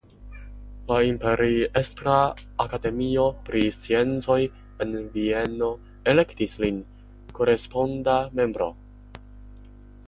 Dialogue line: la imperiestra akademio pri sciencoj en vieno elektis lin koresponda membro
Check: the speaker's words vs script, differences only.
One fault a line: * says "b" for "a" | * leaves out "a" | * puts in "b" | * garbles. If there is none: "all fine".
all fine